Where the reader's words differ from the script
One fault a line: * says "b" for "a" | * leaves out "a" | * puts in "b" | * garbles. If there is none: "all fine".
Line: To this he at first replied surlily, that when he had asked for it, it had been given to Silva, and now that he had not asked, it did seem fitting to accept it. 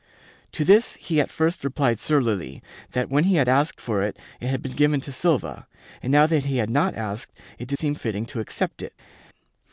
all fine